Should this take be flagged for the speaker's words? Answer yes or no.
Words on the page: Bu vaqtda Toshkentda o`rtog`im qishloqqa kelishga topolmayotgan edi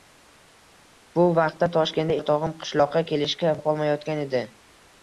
no